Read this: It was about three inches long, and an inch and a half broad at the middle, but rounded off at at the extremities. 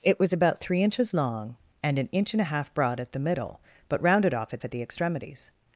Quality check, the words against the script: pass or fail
pass